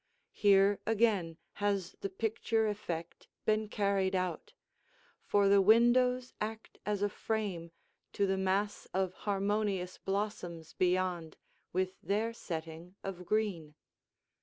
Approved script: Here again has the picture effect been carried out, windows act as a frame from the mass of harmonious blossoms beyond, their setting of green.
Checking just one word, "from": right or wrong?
wrong